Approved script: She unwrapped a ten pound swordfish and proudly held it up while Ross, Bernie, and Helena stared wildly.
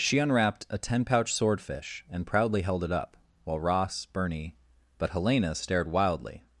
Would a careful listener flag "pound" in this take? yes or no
yes